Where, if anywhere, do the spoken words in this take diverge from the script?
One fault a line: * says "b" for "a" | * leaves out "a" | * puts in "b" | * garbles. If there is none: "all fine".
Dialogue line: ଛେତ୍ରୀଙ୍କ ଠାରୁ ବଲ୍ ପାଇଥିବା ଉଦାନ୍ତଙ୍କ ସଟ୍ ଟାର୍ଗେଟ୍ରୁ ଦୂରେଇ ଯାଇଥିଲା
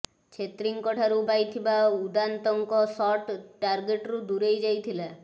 * leaves out "ବଲ୍"